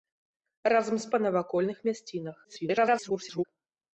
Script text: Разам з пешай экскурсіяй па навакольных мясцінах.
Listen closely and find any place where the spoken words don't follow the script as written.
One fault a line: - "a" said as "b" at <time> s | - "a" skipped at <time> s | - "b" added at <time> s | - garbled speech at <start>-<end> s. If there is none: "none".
- "пешай экскурсіяй" skipped at 1.1 s
- garbled speech at 2.4-3.4 s